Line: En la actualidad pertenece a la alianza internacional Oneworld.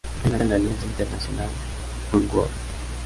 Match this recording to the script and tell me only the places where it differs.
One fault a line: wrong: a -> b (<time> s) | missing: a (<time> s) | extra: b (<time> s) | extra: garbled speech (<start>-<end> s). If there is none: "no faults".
missing: actualidad pertenece (0.4 s)